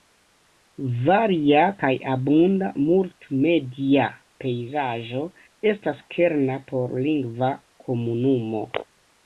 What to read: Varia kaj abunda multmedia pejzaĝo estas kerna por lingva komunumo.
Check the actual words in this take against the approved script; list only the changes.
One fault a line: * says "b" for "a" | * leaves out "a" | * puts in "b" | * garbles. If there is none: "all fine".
all fine